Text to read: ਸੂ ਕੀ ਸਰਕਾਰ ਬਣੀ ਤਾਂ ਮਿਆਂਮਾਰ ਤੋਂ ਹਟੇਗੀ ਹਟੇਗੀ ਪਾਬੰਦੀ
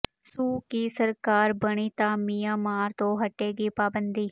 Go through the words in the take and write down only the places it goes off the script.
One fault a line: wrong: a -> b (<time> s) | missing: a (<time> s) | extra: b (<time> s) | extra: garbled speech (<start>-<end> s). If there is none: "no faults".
missing: ਹਟੇਗੀ (3.7 s)